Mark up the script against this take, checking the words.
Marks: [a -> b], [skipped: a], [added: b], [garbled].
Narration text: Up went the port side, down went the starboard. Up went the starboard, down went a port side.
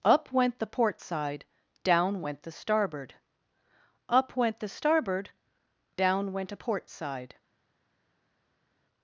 Up went the port side, down went the starboard. Up went the starboard, down went a port side.